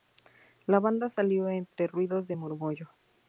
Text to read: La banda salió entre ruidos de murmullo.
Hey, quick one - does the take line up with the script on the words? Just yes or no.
yes